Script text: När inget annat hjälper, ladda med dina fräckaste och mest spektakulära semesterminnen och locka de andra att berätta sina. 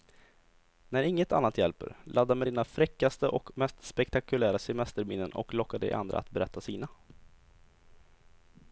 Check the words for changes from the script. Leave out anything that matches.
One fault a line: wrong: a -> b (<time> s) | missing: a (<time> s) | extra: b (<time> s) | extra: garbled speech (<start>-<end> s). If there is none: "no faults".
no faults